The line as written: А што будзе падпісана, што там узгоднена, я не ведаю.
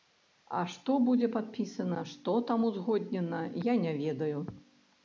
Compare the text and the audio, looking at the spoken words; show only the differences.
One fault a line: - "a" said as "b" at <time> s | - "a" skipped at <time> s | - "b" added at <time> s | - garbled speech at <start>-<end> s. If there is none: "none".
none